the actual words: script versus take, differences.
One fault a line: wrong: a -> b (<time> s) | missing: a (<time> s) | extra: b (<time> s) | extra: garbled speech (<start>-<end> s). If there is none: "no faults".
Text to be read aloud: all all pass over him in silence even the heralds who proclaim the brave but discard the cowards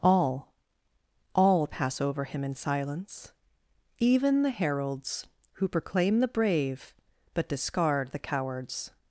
no faults